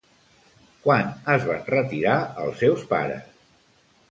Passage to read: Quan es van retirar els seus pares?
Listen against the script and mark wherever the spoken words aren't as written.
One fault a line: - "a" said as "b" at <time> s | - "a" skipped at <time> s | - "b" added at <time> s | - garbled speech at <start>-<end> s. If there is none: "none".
none